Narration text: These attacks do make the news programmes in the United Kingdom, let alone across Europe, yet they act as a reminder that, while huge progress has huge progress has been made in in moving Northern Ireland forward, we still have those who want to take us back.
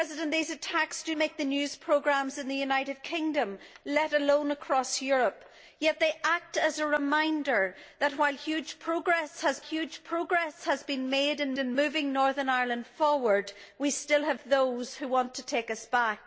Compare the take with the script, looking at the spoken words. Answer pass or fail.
pass